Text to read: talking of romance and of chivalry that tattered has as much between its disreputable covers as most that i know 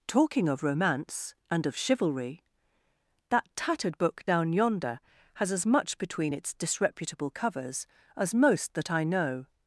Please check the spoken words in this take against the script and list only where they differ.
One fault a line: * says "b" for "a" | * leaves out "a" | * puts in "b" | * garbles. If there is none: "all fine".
* puts in "book down yonder"